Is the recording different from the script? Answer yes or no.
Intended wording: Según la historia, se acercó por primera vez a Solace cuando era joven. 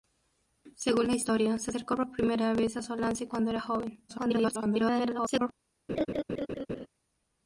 yes